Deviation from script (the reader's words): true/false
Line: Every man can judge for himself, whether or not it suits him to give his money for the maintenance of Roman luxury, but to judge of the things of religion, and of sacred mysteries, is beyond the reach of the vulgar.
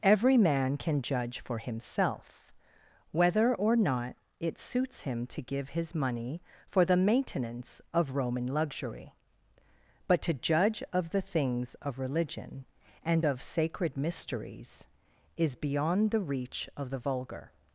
false